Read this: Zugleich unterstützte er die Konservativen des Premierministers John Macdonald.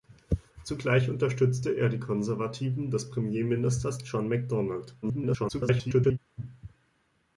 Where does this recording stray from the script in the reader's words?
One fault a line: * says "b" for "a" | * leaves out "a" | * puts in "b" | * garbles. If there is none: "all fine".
* garbles